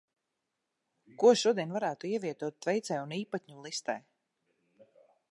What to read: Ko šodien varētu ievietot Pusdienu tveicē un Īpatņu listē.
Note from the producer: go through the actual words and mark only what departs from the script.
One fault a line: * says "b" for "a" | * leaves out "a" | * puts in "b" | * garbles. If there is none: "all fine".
* leaves out "Pusdienu"